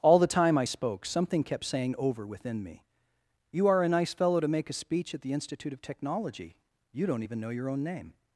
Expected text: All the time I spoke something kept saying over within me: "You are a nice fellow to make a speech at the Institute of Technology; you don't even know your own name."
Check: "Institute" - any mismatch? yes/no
no